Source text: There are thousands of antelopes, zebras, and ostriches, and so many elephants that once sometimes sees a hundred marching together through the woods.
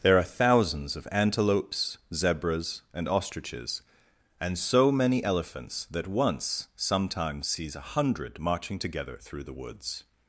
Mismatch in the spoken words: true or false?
false